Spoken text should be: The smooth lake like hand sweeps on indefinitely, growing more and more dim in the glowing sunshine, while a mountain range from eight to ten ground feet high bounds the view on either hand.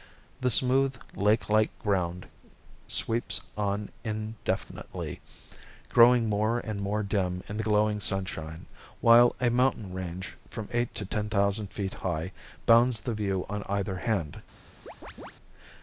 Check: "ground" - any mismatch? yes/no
yes